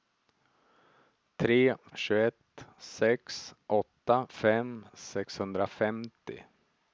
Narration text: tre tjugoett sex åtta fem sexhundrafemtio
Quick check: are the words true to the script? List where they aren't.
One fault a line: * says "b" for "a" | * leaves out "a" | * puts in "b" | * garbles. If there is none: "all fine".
all fine